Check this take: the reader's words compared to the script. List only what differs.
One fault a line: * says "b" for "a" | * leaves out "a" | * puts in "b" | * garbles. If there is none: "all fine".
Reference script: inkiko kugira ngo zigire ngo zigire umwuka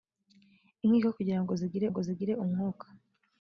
all fine